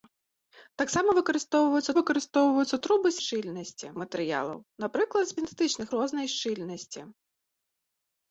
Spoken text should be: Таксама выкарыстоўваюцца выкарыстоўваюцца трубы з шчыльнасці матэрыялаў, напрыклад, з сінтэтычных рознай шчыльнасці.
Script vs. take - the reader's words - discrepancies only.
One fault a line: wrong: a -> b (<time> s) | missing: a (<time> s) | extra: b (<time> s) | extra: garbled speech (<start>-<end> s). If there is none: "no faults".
no faults